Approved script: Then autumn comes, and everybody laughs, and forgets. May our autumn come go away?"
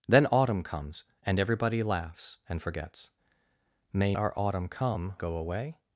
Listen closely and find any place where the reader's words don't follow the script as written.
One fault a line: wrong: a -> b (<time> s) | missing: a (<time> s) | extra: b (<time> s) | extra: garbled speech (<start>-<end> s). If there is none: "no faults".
no faults